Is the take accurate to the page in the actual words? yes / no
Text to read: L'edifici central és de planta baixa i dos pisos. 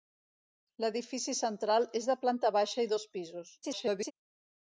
no